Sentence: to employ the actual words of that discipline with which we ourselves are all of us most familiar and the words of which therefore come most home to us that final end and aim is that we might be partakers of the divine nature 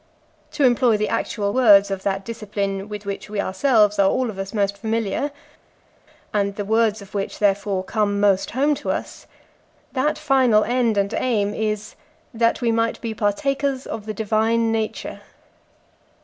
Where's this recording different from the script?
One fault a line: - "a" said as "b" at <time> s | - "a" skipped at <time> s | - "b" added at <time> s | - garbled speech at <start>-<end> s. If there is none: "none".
none